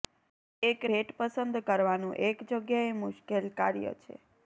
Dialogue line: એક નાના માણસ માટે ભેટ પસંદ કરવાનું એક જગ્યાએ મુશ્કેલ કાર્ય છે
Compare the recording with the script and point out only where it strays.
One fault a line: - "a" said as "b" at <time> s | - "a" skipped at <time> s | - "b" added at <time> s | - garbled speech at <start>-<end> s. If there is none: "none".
- "નાના માણસ માટે" skipped at 0.8 s